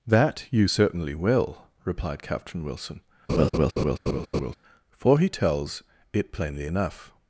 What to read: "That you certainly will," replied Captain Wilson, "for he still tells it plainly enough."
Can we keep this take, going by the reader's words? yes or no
no